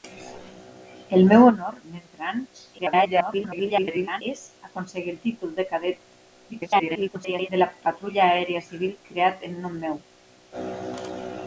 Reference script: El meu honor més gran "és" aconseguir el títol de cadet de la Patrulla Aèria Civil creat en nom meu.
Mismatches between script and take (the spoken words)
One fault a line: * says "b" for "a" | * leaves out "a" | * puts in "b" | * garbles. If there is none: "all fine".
* garbles
* garbles